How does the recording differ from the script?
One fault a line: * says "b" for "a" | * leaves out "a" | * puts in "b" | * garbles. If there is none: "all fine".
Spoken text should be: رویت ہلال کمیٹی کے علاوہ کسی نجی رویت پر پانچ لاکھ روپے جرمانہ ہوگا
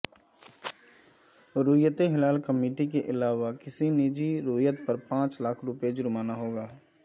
all fine